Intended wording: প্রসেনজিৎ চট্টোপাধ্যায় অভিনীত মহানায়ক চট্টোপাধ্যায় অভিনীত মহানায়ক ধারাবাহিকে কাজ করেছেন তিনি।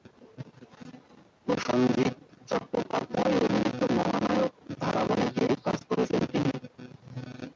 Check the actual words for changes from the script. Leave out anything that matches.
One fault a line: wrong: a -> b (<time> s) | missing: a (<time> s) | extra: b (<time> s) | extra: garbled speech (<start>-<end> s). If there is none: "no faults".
missing: চট্টোপাধ্যায় অভিনীত মহানায়ক (4.5 s)